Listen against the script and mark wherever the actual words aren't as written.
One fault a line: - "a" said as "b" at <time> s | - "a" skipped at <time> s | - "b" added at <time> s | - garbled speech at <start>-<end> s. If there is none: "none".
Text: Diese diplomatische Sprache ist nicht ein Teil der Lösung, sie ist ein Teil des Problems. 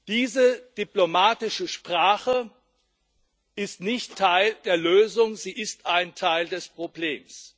- "ein" skipped at 4.2 s